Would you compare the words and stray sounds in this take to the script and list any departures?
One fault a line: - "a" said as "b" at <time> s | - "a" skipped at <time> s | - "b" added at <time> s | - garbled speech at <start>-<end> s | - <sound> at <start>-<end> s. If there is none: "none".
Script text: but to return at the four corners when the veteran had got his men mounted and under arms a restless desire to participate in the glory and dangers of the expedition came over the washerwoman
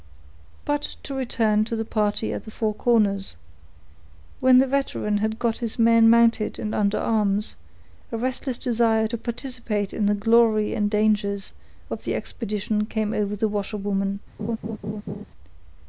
- "to the party" added at 1.6 s
- laugh at 14.4-15.2 s